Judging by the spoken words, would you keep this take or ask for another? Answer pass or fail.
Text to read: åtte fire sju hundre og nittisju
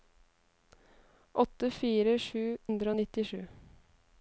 pass